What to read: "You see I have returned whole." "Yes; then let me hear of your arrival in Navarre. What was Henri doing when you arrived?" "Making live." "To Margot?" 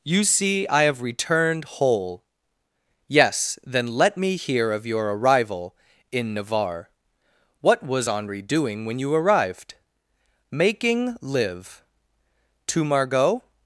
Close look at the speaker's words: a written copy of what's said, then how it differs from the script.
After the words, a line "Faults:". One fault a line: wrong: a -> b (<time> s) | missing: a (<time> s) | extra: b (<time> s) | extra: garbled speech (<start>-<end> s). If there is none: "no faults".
"You see I have returned whole." "Yes; then let me hear of your arrival in Navarre. What was Henri doing when you arrived?" "Making live." "To Margot?"
Faults:
no faults